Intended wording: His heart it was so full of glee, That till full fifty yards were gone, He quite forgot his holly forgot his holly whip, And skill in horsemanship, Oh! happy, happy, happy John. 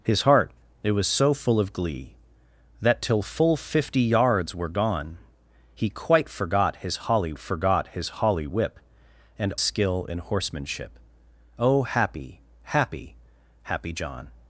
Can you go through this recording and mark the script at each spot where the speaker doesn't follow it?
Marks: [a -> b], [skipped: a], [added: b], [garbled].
His heart it was so full of glee, That till full fifty yards were gone, He quite forgot his holly forgot his holly whip, And skill in horsemanship, Oh! happy, happy, happy John.